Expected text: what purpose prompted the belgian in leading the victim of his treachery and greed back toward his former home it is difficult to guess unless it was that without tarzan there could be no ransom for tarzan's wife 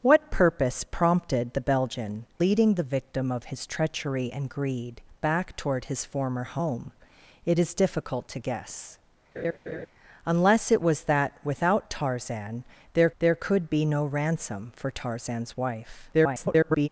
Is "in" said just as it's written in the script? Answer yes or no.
no